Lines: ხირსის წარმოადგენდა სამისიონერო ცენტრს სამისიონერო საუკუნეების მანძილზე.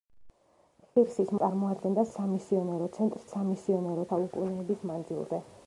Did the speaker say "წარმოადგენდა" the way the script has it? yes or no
yes